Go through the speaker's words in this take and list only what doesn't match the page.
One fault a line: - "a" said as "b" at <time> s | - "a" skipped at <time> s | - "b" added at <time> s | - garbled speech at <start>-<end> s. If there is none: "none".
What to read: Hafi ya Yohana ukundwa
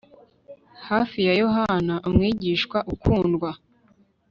- "umwigishwa" added at 2.1 s